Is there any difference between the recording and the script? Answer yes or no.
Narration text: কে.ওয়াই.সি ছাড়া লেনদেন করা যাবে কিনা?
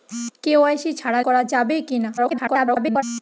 yes